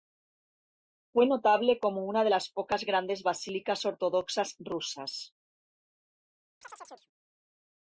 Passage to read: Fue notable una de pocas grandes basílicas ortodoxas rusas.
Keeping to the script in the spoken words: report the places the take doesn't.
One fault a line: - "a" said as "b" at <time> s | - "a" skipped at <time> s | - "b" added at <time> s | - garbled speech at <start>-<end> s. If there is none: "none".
- "como" added at 1.8 s
- "las" added at 2.3 s